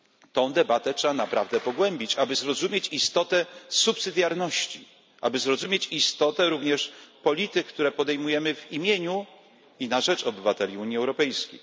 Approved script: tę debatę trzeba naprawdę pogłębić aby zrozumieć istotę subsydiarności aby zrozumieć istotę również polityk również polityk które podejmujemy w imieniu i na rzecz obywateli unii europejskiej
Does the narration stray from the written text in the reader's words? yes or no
yes